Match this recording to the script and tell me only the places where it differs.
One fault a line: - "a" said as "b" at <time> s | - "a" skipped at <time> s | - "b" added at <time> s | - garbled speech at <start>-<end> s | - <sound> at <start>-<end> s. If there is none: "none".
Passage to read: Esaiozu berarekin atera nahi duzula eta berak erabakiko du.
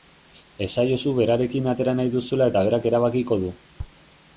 none